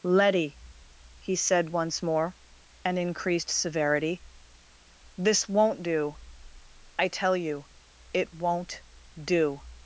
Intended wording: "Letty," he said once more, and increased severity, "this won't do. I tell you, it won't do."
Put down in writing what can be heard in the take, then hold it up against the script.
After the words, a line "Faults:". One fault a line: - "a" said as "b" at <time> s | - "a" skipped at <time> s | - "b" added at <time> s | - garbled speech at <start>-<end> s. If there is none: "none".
"Letty," he said once more, and increased severity, "this won't do. I tell you, it won't do."
Faults:
none